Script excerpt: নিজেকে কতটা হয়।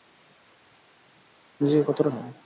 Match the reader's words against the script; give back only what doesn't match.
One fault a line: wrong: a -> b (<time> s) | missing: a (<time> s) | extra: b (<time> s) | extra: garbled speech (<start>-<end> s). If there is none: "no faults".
no faults